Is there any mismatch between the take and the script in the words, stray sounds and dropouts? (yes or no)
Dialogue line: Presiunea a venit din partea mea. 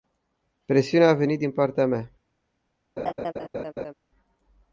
yes